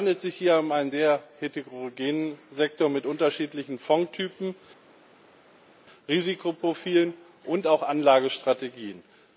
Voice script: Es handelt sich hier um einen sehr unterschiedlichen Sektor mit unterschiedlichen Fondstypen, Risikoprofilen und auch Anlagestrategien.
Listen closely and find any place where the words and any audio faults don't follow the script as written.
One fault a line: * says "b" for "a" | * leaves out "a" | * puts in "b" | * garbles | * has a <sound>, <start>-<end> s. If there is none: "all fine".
* says "heterogenen" for "unterschiedlichen"